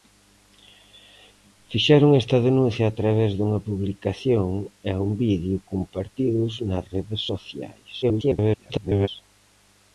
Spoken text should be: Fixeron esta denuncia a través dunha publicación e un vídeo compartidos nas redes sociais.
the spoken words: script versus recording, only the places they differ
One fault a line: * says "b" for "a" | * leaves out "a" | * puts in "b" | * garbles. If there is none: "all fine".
* garbles